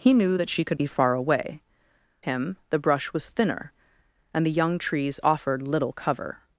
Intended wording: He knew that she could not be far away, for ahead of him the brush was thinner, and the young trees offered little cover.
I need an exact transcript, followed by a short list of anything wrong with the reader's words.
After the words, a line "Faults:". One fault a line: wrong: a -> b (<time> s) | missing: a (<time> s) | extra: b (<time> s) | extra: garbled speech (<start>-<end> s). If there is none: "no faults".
He knew that she could be far away, him the brush was thinner, and the young trees offered little cover.
Faults:
missing: not (0.8 s)
missing: for ahead of (1.6 s)